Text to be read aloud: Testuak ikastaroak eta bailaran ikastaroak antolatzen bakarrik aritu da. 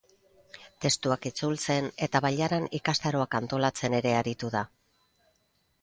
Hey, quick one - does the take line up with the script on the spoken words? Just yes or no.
no